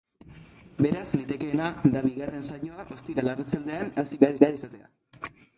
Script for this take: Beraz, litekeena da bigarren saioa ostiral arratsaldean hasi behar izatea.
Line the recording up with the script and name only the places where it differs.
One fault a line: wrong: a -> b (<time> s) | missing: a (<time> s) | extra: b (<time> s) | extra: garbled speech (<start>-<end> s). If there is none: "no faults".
extra: behar (4.4 s)